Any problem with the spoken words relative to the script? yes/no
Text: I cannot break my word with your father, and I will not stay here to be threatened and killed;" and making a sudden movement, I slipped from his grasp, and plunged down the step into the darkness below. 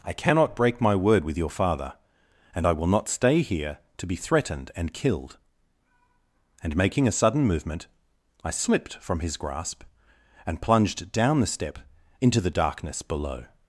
no